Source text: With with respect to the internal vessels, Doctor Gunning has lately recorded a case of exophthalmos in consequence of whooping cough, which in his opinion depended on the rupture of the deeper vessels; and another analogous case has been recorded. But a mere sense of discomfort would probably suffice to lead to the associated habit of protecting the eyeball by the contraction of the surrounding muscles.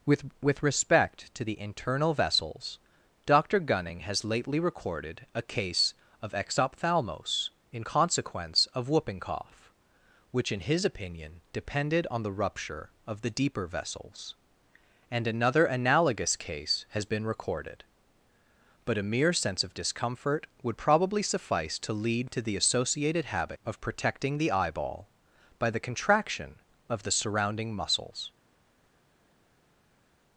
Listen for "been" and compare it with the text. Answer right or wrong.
right